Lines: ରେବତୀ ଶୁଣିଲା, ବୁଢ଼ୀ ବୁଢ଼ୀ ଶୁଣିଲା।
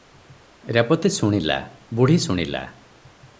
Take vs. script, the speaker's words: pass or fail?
fail